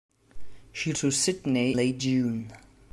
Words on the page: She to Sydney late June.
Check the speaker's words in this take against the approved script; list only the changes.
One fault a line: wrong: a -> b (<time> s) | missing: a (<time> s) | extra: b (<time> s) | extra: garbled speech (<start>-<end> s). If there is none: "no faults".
no faults